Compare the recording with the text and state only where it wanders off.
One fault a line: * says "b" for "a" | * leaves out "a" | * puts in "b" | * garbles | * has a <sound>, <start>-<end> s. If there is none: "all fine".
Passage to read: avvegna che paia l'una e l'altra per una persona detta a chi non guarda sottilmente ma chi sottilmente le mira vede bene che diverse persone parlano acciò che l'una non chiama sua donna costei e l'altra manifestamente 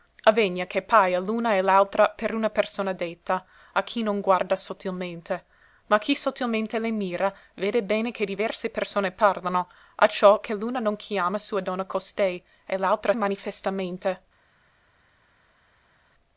all fine